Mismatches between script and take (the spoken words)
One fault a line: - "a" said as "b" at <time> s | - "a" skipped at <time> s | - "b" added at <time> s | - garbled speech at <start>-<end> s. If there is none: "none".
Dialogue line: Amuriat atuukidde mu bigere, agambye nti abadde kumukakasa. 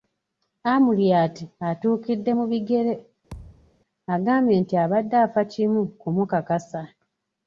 - "afa kimu" added at 5.2 s